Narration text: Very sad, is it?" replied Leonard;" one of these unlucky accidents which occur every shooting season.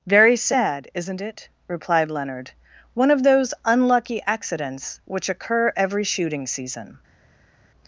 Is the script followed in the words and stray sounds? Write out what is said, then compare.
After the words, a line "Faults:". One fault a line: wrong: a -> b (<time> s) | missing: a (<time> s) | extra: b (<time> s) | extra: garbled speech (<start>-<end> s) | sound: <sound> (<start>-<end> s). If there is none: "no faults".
Very sad, isn't it?" replied Leonard;" one of those unlucky accidents which occur every shooting season.
Faults:
wrong: is -> isn't (0.9 s)
wrong: these -> those (3.2 s)